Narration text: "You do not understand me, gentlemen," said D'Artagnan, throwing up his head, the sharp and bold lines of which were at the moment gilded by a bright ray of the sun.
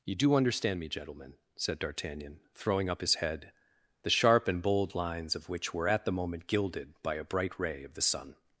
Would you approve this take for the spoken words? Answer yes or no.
no